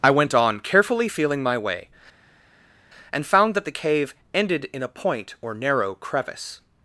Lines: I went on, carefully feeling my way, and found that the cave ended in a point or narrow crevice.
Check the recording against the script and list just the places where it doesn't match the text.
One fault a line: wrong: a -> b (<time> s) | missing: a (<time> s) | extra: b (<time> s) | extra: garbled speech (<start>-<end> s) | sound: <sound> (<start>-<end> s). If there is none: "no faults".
no faults